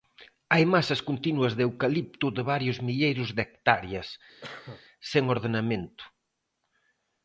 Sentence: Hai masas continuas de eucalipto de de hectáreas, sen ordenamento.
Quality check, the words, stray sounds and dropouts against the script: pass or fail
fail